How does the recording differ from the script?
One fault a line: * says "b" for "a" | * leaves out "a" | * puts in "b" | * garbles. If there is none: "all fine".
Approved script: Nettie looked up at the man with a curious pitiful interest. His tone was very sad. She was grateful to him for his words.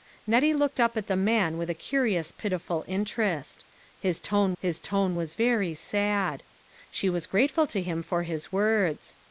* puts in "his tone"